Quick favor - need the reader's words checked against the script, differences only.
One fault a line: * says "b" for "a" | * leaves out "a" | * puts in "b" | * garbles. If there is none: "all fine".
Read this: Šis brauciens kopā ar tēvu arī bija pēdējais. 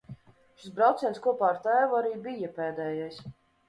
all fine